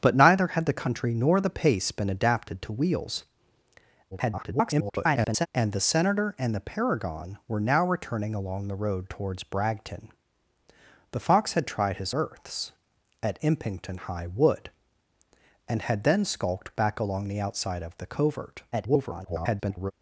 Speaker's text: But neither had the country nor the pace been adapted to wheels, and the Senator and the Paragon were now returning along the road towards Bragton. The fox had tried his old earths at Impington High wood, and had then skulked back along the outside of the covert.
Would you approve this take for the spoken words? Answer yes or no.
no